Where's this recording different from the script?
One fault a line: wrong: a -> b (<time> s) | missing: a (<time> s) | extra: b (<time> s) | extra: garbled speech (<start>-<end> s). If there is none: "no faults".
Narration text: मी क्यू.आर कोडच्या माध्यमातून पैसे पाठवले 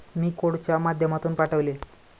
missing: क्यू.आर (0.3 s)
missing: पैसे (1.3 s)